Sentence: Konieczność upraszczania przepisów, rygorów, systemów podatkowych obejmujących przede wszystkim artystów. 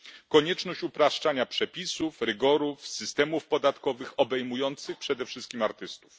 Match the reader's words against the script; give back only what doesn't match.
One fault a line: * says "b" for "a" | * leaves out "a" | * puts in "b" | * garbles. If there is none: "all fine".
all fine